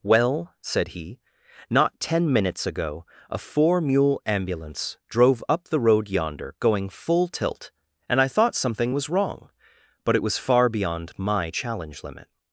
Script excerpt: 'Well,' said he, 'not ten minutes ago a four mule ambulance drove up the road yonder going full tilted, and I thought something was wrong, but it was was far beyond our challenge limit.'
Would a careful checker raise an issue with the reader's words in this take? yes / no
yes